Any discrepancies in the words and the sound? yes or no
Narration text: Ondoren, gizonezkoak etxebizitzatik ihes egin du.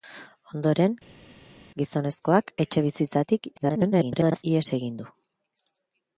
yes